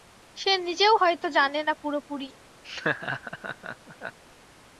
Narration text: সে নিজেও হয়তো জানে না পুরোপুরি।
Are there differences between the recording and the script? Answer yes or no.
no